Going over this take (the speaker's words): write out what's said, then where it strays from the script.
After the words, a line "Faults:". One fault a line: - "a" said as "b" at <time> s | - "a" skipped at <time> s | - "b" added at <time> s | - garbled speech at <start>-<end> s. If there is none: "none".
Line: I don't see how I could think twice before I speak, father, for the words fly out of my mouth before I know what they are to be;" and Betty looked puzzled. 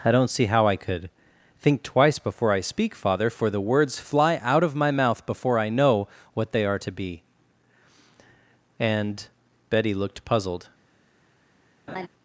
I don't see how I could think twice before I speak, father, for the words fly out of my mouth before I know what they are to be;" and Betty looked puzzled.
Faults:
none